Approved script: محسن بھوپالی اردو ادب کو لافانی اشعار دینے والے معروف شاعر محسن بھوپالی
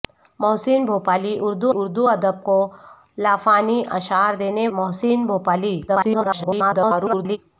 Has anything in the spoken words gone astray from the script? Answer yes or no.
yes